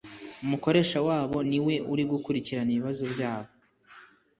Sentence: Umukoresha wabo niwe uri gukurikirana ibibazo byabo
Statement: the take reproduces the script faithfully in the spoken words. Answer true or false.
true